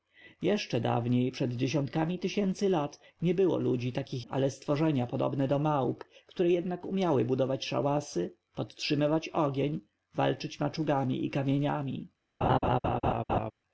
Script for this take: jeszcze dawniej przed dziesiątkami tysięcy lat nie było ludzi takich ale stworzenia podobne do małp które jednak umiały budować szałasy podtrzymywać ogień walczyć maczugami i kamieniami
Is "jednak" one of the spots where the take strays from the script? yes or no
no